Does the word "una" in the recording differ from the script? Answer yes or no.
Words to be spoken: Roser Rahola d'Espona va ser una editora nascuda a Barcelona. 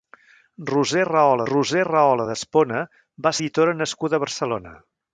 yes